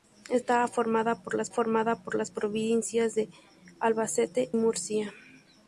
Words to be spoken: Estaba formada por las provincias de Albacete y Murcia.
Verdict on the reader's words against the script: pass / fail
fail